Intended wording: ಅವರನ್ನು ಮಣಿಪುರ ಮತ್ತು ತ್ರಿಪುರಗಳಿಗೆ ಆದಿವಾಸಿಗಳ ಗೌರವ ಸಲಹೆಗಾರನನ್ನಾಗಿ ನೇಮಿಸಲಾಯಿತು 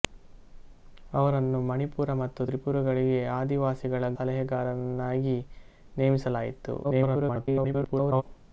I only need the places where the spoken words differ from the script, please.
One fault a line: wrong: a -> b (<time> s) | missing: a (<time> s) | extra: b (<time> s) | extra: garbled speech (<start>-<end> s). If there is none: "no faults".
missing: ಗೌರವ (4.1 s)
extra: garbled speech (6.8-8.2 s)